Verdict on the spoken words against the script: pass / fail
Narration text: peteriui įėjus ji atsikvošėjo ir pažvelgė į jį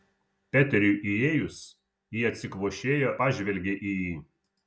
fail